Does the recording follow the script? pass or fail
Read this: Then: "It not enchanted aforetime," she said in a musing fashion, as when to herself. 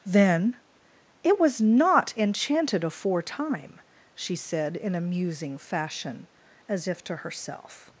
fail